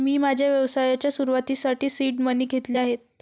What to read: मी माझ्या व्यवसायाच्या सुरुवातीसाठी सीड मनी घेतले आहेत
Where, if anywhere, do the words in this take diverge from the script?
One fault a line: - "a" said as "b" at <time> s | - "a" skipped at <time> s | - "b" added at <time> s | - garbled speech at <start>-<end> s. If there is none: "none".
none